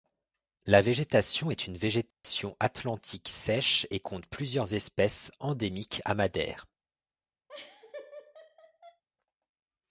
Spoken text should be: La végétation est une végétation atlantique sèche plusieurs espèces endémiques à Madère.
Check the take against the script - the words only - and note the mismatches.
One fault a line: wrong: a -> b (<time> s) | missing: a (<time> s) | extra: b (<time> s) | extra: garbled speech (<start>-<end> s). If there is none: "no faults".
extra: et compte (3.9 s)